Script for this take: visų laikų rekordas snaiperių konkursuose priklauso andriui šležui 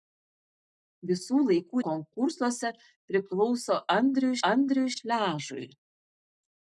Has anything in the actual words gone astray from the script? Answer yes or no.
yes